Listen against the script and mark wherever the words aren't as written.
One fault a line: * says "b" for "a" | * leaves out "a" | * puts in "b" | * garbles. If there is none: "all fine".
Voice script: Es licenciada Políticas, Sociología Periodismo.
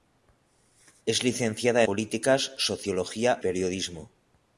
all fine